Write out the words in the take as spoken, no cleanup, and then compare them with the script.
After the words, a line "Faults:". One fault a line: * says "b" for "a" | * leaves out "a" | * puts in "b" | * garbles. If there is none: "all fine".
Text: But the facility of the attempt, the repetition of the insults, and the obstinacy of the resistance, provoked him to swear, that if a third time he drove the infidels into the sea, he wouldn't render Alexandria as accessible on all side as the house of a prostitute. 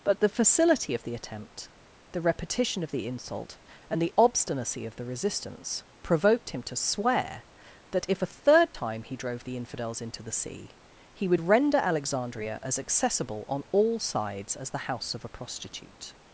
But the facility of the attempt, the repetition of the insult, and the obstinacy of the resistance, provoked him to swear, that if a third time he drove the infidels into the sea, he would render Alexandria as accessible on all sides as the house of a prostitute.
Faults:
* says "insult" for "insults"
* says "would" for "wouldn't"
* says "sides" for "side"